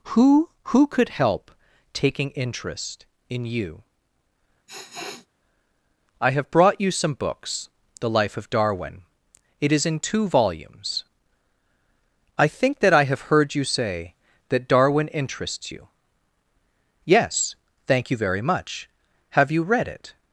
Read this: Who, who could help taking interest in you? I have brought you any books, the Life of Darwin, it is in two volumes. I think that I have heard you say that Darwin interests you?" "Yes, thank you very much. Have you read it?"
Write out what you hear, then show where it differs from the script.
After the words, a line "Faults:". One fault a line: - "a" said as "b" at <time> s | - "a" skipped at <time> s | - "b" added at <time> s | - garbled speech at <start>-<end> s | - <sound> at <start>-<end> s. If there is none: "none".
Who, who could help taking interest in you? I have brought you some books, the Life of Darwin, it is in two volumes. I think that I have heard you say that Darwin interests you?" "Yes, thank you very much. Have you read it?"
Faults:
- sniff at 4.7-5.3 s
- "any" said as "some" at 6.9 s